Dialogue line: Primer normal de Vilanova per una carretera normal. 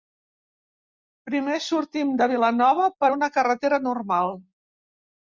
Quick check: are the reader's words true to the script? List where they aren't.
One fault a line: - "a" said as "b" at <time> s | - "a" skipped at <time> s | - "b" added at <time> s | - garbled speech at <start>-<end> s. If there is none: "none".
- "normal" said as "sortim" at 1.6 s